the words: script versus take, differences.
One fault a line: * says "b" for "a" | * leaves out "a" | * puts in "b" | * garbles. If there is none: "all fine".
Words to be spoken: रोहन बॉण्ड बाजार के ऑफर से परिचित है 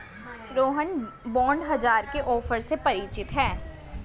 all fine